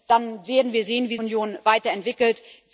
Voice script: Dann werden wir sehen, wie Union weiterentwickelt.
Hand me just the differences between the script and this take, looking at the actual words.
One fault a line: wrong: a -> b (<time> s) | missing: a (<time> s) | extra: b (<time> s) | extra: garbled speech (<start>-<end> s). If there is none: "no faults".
no faults